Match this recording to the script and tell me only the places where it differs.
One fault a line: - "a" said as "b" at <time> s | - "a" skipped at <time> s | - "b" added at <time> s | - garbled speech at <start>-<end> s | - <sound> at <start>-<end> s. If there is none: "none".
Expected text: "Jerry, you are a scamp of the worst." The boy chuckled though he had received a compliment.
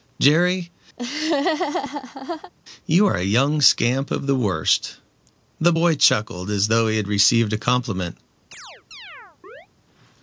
- laugh at 1.0-2.5 s
- "young" added at 3.2 s
- "as" added at 6.5 s
- chirp at 8.5-9.7 s